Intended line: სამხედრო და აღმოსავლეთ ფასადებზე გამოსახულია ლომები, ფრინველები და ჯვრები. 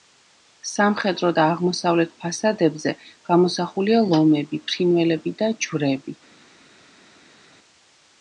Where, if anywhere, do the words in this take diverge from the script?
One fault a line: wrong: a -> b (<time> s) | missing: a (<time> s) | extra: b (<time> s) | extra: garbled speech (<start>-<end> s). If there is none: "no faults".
no faults